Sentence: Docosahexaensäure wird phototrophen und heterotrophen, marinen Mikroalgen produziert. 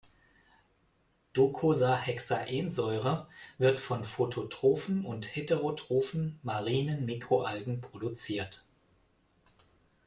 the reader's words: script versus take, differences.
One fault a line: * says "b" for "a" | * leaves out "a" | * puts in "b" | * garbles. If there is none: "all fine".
* puts in "von"